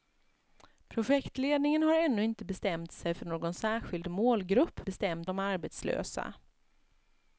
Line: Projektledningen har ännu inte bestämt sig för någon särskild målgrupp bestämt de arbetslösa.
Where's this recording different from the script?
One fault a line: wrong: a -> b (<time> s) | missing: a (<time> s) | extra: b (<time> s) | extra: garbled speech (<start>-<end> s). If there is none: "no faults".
no faults